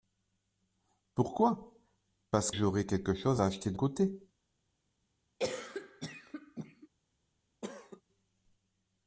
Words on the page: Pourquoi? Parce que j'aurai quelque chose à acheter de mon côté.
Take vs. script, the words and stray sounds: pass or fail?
fail